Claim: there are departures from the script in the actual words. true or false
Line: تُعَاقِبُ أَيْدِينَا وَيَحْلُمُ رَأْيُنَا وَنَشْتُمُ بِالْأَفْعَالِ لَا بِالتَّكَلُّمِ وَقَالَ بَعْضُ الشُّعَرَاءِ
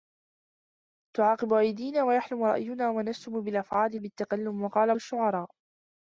true